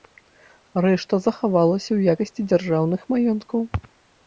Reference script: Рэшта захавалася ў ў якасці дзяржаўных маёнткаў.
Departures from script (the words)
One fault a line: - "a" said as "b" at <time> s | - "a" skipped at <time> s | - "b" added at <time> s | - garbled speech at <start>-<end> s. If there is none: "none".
- "ў" skipped at 2.2 s